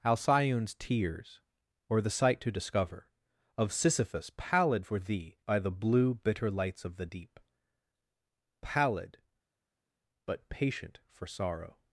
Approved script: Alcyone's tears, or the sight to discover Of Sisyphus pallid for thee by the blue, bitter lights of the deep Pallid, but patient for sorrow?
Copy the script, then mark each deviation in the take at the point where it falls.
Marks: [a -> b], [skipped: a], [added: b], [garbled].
Alcyone's tears, or the sight to discover Of Sisyphus pallid for thee by the blue, bitter lights of the deep Pallid, but patient for sorrow?